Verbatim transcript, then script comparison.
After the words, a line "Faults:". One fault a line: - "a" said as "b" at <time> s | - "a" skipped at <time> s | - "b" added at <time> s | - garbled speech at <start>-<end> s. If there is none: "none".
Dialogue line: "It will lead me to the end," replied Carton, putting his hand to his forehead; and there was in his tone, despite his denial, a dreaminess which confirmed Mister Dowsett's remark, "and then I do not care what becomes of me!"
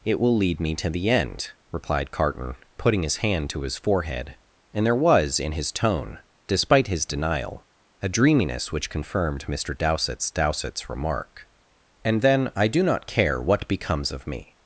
"It will lead me to the end," replied Carton, putting his hand to his forehead; and there was in his tone, despite his denial, a dreaminess which confirmed Mister Dowsett's Dowsett's remark, "and then I do not care what becomes of me!"
Faults:
- "Dowsett's" added at 10.3 s